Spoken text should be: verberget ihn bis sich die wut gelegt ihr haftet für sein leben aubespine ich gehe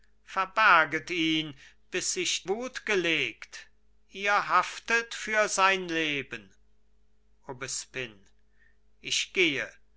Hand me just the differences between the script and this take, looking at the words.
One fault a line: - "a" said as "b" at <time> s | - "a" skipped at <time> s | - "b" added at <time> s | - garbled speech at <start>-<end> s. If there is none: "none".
- "die" skipped at 2.5 s